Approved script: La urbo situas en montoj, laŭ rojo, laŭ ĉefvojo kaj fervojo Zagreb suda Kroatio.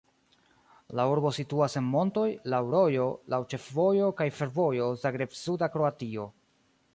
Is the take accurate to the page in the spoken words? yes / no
yes